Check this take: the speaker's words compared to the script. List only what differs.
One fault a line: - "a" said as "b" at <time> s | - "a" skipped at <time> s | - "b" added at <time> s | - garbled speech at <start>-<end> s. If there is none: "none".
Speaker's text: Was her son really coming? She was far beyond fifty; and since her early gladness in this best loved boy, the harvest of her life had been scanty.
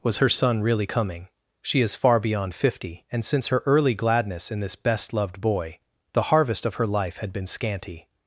- "was" said as "is" at 1.8 s